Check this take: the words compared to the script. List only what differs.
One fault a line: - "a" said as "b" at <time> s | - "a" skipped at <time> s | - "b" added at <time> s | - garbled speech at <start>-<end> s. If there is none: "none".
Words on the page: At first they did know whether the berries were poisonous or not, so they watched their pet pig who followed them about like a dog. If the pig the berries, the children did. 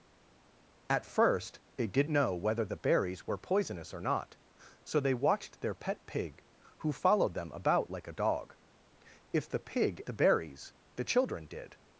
none